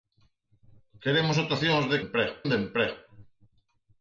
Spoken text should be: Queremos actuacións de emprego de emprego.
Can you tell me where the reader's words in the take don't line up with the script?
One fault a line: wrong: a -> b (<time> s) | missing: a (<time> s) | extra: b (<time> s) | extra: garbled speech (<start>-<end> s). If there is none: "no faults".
no faults